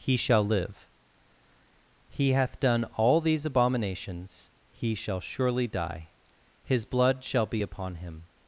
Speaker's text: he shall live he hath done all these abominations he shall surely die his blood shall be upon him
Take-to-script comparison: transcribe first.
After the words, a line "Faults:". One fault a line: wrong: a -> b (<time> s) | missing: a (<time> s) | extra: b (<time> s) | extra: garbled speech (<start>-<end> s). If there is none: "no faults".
he shall live he hath done all these abominations he shall surely die his blood shall be upon him
Faults:
no faults